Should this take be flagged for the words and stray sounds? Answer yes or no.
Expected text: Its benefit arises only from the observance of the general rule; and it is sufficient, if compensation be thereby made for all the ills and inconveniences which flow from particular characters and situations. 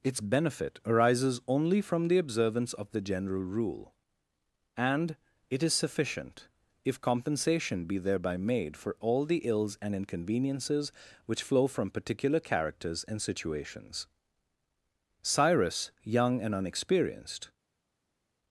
yes